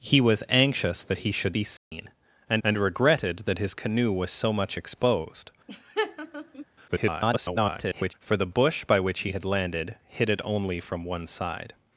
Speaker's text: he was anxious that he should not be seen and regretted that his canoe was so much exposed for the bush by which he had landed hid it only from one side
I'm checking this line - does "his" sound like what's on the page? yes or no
yes